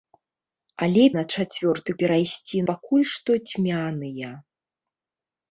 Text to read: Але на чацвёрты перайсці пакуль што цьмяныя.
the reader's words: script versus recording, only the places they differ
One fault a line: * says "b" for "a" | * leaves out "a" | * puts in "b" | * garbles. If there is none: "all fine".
all fine